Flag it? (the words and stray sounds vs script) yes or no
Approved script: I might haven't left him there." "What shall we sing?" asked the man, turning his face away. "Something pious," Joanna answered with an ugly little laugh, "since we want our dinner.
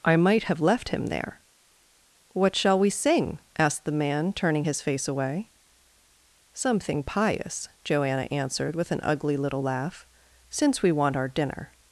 yes